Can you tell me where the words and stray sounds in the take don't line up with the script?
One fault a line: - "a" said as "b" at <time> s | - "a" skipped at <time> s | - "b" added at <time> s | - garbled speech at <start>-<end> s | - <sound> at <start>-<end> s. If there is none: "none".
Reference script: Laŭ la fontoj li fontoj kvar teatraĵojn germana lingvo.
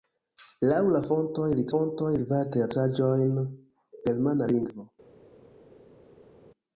none